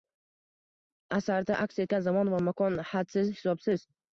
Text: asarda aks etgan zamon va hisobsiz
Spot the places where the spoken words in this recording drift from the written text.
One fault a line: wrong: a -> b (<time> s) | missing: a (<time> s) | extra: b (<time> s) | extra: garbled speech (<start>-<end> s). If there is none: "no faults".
extra: makon hadsiz (2.5 s)